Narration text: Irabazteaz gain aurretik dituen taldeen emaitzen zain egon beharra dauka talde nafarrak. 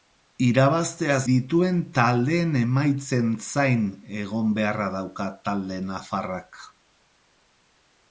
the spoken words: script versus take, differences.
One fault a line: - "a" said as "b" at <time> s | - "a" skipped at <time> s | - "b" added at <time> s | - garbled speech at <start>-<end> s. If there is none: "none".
- "gain aurretik" skipped at 1.2 s